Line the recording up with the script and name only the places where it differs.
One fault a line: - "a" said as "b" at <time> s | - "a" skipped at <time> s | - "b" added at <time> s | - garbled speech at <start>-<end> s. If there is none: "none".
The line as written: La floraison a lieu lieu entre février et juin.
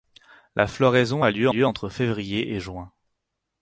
none